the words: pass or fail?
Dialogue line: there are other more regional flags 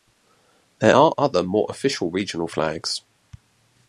fail